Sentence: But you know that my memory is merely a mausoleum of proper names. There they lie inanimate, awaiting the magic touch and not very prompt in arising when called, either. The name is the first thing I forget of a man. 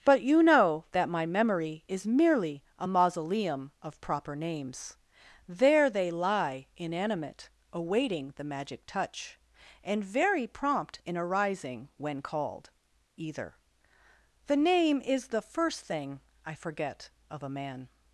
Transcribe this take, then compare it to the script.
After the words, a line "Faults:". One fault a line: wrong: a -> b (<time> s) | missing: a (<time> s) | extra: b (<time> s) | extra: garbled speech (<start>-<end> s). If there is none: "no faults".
But you know that my memory is merely a mausoleum of proper names. There they lie inanimate, awaiting the magic touch and very prompt in arising when called, either. The name is the first thing I forget of a man.
Faults:
missing: not (10.0 s)